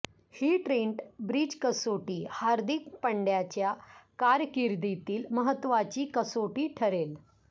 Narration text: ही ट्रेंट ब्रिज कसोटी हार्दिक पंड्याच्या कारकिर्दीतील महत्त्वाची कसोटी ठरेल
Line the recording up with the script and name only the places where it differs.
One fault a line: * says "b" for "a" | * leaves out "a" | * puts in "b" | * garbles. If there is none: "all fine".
all fine